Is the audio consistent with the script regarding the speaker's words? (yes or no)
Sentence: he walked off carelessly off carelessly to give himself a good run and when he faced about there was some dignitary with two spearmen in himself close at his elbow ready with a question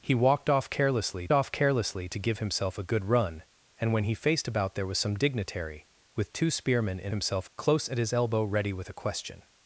yes